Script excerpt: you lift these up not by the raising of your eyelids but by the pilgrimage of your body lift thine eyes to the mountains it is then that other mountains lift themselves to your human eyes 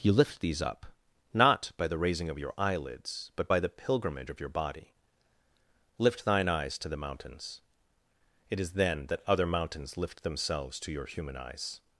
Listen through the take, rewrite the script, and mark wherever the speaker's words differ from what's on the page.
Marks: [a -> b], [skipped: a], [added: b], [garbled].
you lift these up not by the raising of your eyelids but by the pilgrimage of your body lift thine eyes to the mountains it is then that other mountains lift themselves to your human eyes